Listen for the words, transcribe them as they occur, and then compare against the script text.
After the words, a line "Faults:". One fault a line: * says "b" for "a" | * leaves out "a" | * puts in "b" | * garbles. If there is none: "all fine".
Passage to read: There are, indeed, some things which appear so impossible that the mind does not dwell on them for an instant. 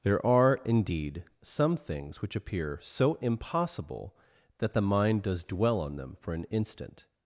There are, indeed, some things which appear so impossible that the mind does dwell on them for an instant.
Faults:
* leaves out "not"